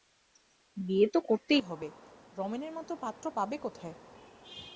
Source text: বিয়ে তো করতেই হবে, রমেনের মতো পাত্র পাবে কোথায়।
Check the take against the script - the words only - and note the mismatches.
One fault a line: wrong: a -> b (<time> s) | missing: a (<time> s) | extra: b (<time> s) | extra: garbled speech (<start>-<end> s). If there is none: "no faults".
no faults